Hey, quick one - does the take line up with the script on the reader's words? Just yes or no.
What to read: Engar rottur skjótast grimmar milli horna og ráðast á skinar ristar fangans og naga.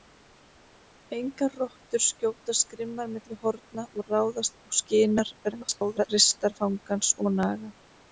no